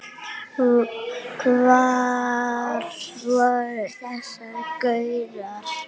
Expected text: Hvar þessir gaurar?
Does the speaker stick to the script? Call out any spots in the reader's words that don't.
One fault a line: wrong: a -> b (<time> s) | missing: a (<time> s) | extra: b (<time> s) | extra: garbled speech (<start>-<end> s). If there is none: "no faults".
extra: voru (3.2 s)